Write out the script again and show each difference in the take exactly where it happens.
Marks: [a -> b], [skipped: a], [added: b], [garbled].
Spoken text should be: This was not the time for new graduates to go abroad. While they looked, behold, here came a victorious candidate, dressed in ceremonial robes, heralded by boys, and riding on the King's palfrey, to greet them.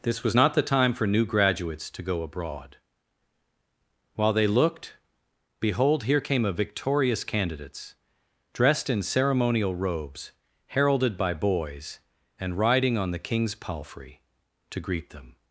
This was not the time for new graduates to go abroad. While they looked, behold, here came a victorious [candidate, -> candidates] dressed in ceremonial robes, heralded by boys, and riding on the King's palfrey, to greet them.